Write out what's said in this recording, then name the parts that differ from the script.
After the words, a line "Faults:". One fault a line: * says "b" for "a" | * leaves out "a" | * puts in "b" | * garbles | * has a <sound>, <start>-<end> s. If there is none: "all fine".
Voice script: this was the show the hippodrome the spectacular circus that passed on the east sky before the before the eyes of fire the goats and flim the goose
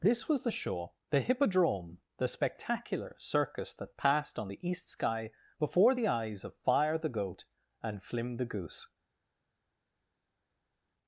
this was the show the hippodrome the spectacular circus that passed on the east sky before the eyes of fire the goat and flim the goose
Faults:
* leaves out "before the"
* says "goat" for "goats"